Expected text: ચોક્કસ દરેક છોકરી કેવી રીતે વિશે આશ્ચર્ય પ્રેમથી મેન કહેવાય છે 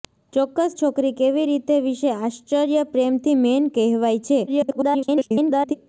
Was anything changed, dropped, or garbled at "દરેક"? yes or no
yes